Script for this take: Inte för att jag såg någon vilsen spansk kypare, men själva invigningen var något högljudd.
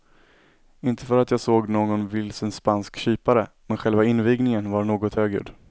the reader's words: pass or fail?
pass